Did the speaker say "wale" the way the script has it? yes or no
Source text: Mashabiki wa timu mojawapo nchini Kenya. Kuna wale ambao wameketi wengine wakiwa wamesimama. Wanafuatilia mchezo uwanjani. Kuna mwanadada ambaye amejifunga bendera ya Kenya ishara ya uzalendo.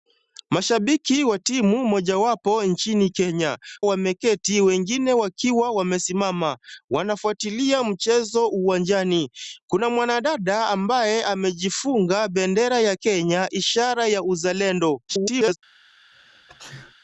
no